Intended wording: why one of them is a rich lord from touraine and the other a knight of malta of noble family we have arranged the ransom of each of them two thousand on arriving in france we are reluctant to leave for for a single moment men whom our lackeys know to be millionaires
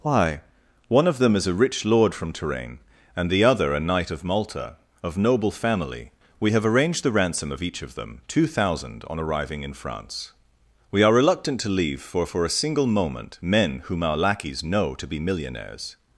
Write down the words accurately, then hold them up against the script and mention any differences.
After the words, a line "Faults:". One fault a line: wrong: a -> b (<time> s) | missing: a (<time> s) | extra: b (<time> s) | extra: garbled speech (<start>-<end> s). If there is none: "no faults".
why one of them is a rich lord from touraine and the other a knight of malta of noble family we have arranged the ransom of each of them two thousand on arriving in france we are reluctant to leave for for a single moment men whom our lackeys know to be millionaires
Faults:
no faults